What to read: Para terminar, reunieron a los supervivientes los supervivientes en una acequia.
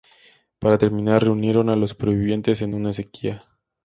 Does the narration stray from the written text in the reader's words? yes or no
yes